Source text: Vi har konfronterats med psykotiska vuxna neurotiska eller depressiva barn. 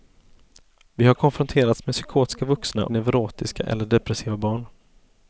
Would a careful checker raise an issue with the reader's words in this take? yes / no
no